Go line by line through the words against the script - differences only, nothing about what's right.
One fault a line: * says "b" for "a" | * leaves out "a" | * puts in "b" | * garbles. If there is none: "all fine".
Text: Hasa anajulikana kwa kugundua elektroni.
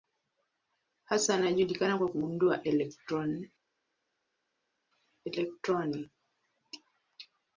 all fine